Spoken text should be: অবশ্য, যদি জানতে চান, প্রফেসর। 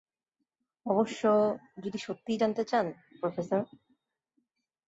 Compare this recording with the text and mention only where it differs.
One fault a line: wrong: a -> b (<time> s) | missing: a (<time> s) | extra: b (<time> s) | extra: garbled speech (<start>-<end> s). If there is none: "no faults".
extra: সত্যিই (2.0 s)